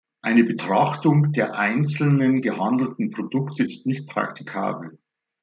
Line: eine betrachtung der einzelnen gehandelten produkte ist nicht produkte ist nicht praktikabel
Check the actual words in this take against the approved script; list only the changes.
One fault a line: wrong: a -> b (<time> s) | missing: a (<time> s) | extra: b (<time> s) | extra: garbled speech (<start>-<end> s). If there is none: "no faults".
missing: produkte ist nicht (4.1 s)